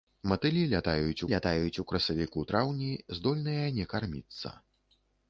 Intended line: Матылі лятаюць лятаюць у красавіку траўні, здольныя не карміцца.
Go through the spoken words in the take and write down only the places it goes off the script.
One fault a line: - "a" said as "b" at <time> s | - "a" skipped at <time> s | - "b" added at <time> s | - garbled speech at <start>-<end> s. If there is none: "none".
none